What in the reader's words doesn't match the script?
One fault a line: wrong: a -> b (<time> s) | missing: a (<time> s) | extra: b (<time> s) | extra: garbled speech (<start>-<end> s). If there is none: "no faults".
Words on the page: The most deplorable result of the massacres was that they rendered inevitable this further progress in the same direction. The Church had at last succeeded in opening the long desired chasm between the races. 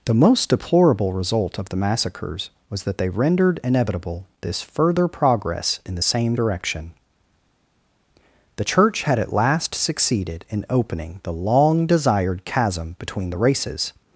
no faults